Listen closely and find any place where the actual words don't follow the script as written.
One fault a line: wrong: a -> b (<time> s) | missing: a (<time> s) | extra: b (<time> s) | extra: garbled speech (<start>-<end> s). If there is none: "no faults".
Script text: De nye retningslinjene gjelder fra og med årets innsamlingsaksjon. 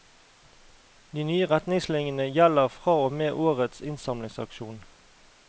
no faults